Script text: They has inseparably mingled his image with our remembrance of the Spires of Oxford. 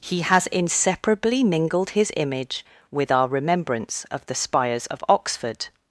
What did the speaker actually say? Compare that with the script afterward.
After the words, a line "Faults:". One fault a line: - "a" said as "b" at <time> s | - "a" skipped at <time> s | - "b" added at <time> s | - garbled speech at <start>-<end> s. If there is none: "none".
He has inseparably mingled his image with our remembrance of the Spires of Oxford.
Faults:
- "They" said as "He" at 0.0 s